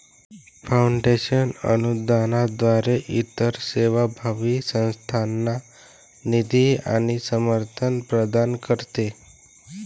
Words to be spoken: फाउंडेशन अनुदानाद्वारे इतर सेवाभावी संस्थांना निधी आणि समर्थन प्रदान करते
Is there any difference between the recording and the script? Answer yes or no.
no